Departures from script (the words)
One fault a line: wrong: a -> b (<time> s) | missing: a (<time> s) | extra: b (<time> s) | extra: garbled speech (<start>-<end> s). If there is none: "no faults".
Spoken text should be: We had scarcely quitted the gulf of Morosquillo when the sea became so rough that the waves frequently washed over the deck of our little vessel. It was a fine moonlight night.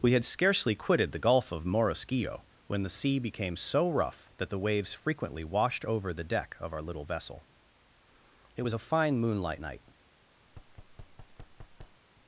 no faults